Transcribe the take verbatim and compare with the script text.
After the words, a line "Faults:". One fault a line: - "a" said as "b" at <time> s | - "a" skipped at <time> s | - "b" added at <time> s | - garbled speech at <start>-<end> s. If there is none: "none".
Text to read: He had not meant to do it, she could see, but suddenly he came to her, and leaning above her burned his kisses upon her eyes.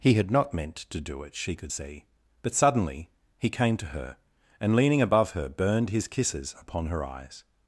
He had not meant to do it, she could see, but suddenly he came to her, and leaning above her burned his kisses upon her eyes.
Faults:
none